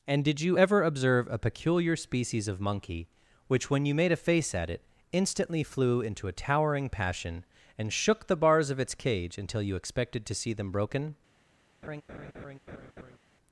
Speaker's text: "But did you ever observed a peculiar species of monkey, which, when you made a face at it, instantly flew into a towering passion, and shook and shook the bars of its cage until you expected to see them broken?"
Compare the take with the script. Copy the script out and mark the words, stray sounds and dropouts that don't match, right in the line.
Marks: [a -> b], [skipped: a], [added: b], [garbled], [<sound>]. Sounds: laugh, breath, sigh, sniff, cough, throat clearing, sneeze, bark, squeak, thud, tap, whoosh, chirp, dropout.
["But -> And] did you ever [observed -> observe] a peculiar species of monkey, which, when you made a face at it, instantly flew into a towering passion, and shook [skipped: and shook] the bars of its cage until you expected to see them broken?" [laugh]